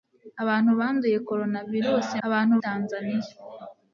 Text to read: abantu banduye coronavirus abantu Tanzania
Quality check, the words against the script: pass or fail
pass